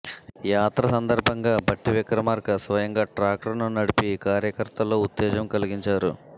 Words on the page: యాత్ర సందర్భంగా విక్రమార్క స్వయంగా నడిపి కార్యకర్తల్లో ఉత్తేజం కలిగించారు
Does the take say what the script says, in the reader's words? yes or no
no